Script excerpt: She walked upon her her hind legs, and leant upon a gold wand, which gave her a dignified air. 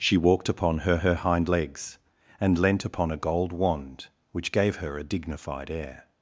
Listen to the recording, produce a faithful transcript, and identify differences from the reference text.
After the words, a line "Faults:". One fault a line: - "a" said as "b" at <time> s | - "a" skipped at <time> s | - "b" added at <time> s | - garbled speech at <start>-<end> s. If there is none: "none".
She walked upon her her hind legs, and leant upon a gold wand, which gave her a dignified air.
Faults:
none